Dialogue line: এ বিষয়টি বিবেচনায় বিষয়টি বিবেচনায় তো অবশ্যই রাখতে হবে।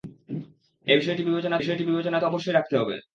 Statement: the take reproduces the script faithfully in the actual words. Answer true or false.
true